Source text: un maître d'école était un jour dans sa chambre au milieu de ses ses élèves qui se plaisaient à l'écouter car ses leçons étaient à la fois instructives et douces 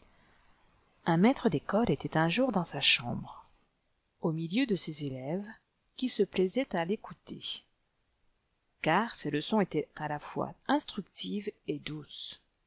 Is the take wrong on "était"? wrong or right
right